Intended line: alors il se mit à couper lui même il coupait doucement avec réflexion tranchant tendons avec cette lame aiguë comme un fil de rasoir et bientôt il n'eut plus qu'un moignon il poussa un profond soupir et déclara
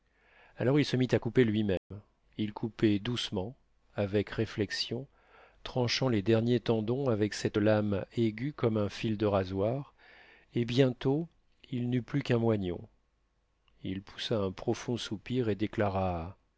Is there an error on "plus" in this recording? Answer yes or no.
no